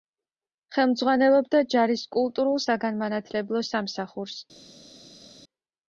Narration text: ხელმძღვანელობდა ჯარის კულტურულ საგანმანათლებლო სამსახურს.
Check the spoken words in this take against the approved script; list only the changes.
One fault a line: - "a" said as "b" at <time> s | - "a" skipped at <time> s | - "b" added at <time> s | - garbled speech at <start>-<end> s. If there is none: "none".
none